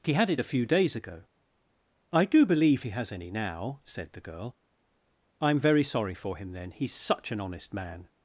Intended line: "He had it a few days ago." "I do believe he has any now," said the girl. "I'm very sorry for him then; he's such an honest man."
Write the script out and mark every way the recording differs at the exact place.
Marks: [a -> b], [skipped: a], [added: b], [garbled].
"He had it a few days ago." "I do believe he has any now," said the girl. "I'm very sorry for him then; he's such an honest man."